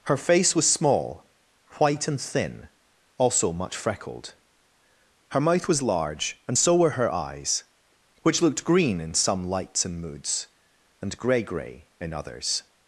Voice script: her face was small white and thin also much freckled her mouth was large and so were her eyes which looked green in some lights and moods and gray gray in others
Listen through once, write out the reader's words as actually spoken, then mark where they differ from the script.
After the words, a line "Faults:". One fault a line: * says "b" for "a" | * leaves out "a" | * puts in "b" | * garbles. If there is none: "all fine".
her face was small white and thin also much freckled her mouth was large and so were her eyes which looked green in some lights and moods and gray gray in others
Faults:
all fine